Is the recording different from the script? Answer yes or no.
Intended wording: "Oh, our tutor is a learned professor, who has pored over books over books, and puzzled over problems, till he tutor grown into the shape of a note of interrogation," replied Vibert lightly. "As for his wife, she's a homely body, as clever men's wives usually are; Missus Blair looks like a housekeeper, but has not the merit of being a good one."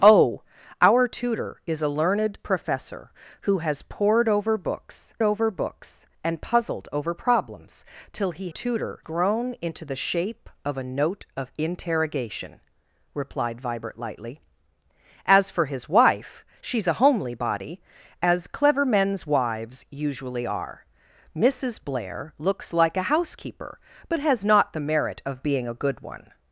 no